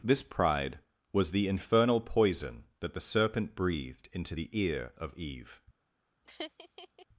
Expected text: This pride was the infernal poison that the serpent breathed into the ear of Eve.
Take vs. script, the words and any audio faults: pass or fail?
fail